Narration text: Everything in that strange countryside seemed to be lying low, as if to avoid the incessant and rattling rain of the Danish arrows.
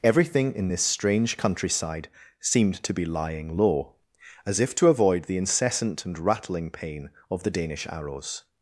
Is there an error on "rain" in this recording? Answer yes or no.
yes